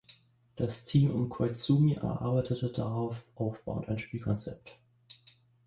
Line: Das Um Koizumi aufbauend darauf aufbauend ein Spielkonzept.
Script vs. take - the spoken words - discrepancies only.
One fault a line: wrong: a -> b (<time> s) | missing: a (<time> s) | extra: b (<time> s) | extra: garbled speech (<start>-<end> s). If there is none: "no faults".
extra: Team (0.8 s)
wrong: aufbauend -> erarbeitete (1.9 s)